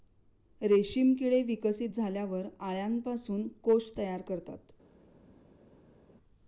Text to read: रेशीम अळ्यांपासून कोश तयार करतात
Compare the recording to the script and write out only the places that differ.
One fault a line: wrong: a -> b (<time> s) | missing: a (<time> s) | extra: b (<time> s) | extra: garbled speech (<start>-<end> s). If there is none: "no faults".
extra: किडे विकसित झाल्यावर (1.1 s)